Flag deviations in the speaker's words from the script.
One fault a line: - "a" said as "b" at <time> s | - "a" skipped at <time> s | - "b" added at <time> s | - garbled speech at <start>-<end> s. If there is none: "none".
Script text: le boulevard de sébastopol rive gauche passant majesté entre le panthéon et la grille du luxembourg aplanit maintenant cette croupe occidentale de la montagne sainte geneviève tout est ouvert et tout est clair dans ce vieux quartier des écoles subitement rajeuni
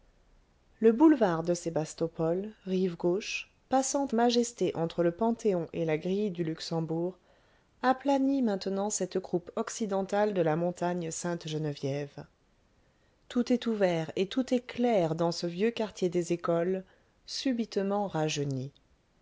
none